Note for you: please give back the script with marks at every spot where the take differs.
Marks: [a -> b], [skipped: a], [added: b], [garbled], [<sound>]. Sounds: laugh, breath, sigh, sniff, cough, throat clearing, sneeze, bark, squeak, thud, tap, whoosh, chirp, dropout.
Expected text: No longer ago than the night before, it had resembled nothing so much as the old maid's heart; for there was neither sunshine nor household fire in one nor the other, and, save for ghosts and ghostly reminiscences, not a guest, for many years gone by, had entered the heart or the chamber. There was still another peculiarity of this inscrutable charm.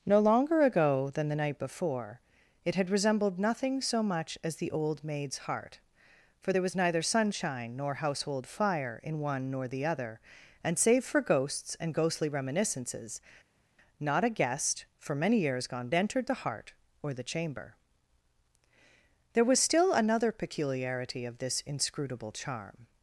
No longer ago than the night before, it had resembled nothing so much as the old maid's heart; for there was neither sunshine nor household fire in one nor the other, and, save for ghosts and ghostly reminiscences, not a guest, for many years gone [skipped: by, had] entered the heart or the chamber. There was still another peculiarity of this inscrutable charm.